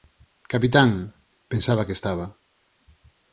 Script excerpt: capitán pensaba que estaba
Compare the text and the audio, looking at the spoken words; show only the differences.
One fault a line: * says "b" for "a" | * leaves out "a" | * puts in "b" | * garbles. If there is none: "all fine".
all fine